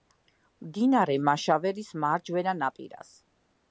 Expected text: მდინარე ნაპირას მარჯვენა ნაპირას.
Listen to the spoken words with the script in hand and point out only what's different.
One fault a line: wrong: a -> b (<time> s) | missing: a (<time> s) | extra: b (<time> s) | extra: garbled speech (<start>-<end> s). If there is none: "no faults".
wrong: ნაპირას -> მაშავერის (1.3 s)